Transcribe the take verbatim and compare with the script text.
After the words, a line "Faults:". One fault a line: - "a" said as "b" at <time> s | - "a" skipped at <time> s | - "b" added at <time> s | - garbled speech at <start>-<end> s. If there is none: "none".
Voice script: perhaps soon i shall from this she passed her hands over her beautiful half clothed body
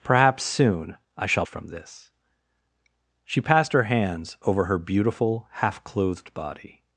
perhaps soon i shall from this she passed her hands over her beautiful half clothed body
Faults:
none